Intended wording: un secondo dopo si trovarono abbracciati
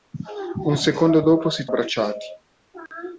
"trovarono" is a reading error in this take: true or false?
true